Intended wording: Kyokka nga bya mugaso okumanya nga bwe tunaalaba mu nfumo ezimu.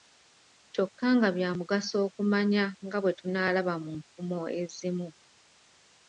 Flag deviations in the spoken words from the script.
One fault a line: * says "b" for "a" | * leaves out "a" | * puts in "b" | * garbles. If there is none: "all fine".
all fine